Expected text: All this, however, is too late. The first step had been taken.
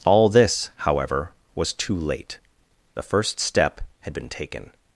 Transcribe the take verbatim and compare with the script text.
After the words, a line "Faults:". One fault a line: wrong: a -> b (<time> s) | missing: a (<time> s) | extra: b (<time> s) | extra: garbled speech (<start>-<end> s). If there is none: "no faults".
All this, however, was too late. The first step had been taken.
Faults:
wrong: is -> was (1.5 s)